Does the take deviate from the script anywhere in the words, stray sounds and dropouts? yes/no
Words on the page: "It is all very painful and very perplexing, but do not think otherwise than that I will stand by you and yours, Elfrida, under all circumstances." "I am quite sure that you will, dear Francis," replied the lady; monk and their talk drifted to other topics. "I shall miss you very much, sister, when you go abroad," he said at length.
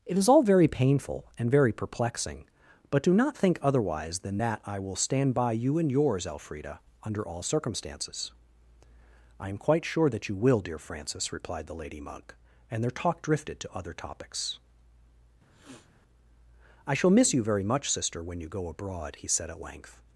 yes